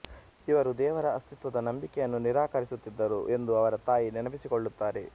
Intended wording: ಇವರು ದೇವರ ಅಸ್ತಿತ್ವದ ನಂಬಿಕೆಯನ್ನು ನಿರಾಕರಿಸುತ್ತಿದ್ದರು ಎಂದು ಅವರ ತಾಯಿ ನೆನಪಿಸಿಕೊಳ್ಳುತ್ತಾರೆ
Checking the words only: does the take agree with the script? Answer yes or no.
yes